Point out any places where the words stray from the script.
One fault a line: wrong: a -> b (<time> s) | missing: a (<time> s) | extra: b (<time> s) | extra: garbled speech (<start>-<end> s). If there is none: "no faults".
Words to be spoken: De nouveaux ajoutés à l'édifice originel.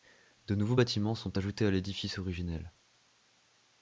extra: bâtiments sont (0.7 s)